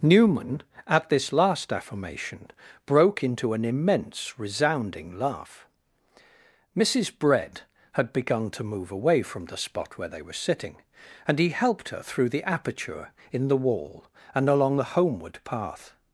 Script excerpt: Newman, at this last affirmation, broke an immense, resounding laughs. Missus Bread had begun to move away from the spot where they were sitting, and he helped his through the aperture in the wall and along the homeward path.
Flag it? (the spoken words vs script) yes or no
yes